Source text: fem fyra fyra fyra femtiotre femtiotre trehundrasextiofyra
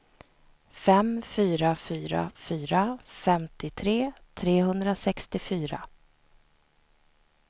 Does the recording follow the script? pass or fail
fail